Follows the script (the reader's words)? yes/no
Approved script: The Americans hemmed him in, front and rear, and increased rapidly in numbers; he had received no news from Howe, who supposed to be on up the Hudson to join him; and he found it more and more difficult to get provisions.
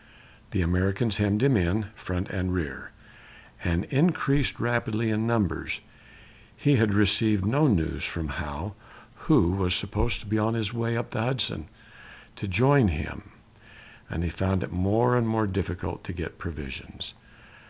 no